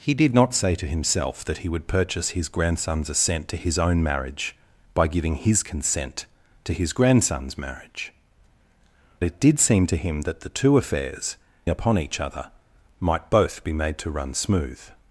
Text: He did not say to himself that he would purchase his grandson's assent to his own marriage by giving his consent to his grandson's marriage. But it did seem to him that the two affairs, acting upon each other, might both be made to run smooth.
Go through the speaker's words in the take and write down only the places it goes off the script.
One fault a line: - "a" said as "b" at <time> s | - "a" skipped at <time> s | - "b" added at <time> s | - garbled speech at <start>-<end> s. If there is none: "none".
- "But" skipped at 8.1 s
- "acting" skipped at 11.4 s